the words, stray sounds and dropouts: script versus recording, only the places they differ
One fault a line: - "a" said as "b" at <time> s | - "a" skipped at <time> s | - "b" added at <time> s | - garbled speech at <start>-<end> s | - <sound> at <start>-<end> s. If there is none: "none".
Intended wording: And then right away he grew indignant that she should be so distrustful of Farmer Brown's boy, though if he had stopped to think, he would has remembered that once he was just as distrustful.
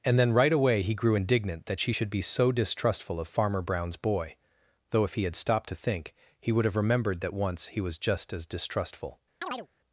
- "has" said as "have" at 6.6 s
- chirp at 9.4-9.7 s